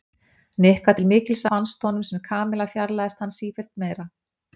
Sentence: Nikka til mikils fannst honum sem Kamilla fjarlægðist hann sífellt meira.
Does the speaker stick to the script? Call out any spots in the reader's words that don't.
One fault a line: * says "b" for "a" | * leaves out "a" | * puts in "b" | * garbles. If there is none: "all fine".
all fine